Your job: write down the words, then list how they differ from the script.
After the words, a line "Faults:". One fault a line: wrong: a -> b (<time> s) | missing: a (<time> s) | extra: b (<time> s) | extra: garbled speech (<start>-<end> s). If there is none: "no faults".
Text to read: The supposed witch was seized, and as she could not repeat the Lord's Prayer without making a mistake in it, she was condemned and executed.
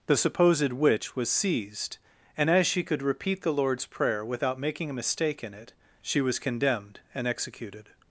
The supposed witch was seized, and as she could repeat the Lord's Prayer without making a mistake in it, she was condemned and executed.
Faults:
missing: not (3.0 s)